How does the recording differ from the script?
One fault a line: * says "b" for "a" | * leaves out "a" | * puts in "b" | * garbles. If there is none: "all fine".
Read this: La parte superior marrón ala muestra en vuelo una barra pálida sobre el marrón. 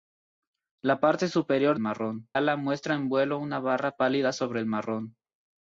all fine